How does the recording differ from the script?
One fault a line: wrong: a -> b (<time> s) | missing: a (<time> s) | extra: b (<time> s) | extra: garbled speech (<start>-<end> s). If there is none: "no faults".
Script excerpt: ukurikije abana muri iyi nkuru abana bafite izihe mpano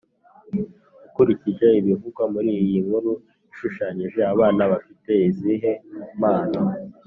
wrong: abana -> ibivugwa (1.8 s)
extra: ishushanyije (3.5 s)